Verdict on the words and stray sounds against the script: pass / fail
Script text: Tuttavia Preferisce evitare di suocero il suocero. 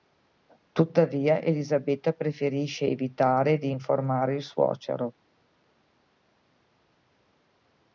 fail